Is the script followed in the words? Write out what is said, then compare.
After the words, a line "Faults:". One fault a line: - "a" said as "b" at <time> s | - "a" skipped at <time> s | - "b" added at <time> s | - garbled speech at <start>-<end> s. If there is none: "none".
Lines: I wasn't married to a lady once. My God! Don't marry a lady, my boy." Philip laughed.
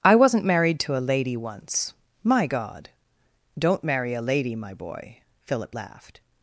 I wasn't married to a lady once. My God! Don't marry a lady, my boy." Philip laughed.
Faults:
none